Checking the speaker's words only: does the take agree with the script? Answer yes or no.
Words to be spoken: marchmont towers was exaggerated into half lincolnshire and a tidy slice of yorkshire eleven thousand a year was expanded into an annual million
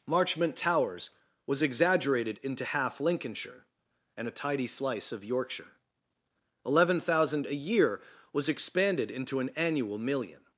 yes